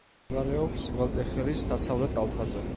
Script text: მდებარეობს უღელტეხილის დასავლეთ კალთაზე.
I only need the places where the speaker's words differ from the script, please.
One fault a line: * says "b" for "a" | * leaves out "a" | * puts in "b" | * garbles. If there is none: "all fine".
all fine